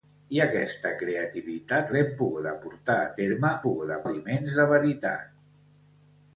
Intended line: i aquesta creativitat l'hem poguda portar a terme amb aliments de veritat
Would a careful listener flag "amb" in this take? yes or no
yes